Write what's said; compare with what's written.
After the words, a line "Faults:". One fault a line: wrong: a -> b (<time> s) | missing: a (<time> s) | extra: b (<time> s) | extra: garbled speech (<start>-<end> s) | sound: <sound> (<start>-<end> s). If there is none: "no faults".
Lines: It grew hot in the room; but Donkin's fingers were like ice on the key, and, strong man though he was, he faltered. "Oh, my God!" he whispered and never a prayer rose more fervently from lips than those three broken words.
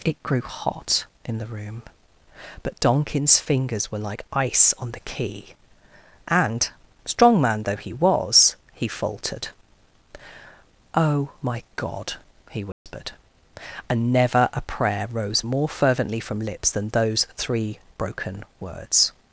It grew hot in the room; but Donkin's fingers were like ice on the key, and, strong man though he was, he faltered. "Oh, my God!" he whispered and never a prayer rose more fervently from lips than those three broken words.
Faults:
sound: dropout (12.7-12.9 s)